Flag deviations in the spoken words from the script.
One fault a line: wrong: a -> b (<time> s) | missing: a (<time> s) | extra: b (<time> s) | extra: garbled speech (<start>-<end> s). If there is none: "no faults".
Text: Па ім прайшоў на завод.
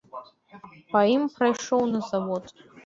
no faults